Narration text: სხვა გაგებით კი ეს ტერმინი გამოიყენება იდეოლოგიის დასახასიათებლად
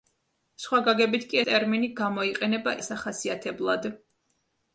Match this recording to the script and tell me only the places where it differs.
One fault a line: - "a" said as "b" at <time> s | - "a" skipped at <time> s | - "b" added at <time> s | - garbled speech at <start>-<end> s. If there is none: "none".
- "ეს" skipped at 1.4 s
- "იდეოლოგიის" skipped at 2.8 s